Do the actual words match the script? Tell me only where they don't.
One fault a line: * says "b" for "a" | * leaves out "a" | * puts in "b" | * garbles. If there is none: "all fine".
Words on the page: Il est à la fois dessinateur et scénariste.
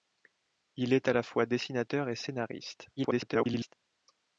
* garbles